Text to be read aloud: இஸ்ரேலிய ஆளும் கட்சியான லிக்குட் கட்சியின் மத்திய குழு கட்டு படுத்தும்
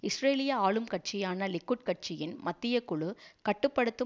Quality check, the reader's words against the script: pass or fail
pass